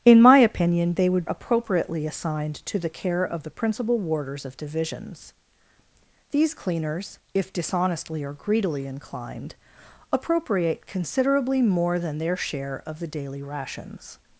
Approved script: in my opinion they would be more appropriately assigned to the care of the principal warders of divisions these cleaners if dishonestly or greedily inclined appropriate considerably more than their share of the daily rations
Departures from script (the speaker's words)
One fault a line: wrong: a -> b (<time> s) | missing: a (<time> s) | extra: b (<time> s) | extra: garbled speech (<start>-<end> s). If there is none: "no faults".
missing: be more (1.2 s)